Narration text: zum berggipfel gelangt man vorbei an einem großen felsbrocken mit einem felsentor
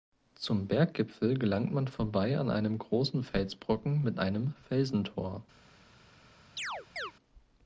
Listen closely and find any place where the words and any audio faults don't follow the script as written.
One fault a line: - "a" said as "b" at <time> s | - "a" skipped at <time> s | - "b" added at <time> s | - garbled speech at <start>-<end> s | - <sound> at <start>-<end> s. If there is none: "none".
- chirp at 6.6-7.1 s